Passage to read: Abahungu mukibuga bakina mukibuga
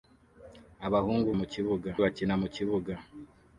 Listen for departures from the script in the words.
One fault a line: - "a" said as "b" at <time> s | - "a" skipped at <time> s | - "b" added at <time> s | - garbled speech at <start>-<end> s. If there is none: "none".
none